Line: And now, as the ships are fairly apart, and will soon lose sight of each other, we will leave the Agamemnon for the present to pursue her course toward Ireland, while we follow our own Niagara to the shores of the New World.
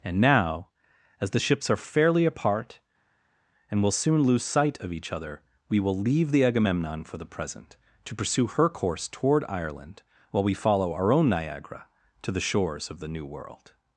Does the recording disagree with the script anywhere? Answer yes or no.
no